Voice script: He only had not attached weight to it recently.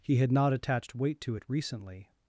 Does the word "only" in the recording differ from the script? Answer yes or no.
yes